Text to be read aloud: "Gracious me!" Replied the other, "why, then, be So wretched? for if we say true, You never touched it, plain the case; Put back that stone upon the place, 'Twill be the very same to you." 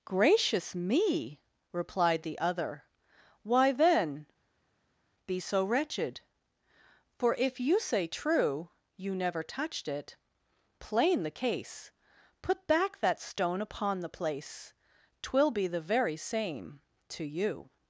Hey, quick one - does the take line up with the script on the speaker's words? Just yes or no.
no